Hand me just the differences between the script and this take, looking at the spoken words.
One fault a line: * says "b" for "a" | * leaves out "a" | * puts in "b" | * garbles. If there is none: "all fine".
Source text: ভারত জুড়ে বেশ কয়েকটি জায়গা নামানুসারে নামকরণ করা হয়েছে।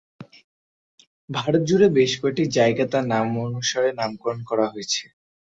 * puts in "তার"